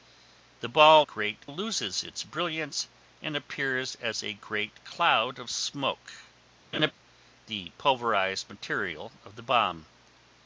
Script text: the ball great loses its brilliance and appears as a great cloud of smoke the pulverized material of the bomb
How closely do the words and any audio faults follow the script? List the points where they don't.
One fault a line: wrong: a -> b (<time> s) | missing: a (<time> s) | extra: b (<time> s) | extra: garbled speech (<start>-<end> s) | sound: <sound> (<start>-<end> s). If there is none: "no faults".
sound: laugh (6.7-6.9 s)